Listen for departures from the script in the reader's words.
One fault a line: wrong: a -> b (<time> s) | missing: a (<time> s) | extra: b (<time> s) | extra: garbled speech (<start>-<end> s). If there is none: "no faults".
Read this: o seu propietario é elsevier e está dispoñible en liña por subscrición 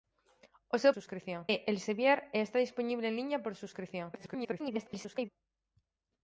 wrong: propietario -> subscrición (0.9 s)
extra: garbled speech (4.1-5.3 s)